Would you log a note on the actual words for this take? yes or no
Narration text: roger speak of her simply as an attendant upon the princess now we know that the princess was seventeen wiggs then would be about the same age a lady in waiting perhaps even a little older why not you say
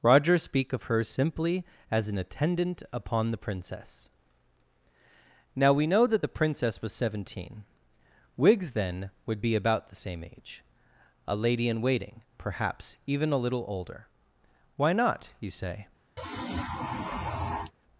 no